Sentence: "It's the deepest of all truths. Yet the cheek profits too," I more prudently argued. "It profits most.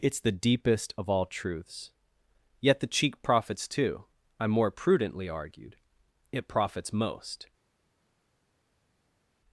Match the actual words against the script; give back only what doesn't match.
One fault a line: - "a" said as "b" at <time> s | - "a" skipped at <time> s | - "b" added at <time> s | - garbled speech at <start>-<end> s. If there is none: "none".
none